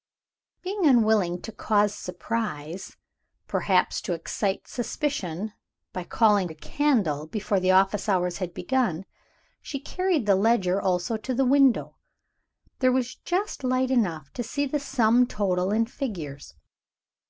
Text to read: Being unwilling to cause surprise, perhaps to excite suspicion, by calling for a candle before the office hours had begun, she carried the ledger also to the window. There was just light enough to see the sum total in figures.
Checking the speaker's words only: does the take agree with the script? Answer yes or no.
no